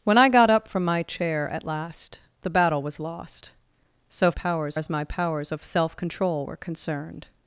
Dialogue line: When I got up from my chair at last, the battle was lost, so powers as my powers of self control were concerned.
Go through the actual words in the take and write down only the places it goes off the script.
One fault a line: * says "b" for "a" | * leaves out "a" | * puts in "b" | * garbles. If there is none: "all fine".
all fine